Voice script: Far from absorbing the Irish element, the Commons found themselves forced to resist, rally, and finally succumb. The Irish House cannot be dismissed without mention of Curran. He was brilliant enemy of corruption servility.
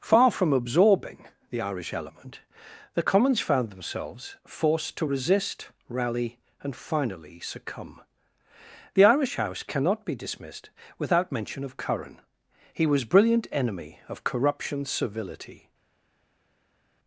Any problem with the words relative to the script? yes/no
no